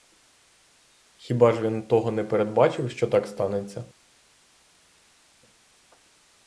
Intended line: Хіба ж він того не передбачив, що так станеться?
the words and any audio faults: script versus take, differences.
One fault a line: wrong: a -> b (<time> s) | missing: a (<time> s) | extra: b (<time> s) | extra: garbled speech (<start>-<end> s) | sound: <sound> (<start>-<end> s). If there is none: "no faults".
no faults